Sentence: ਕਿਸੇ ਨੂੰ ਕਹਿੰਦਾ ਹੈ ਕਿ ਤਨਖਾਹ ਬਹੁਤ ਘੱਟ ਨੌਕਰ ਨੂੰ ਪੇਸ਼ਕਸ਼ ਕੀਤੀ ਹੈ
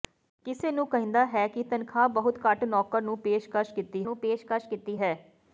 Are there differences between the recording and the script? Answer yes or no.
yes